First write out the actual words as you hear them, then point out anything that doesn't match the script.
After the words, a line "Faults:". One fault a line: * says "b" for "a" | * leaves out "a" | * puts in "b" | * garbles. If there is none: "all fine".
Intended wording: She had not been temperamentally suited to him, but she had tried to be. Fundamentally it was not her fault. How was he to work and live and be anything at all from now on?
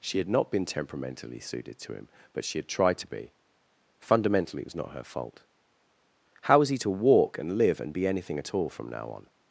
She had not been temperamentally suited to him, but she had tried to be. Fundamentally it was not her fault. How was he to walk and live and be anything at all from now on?
Faults:
* says "walk" for "work"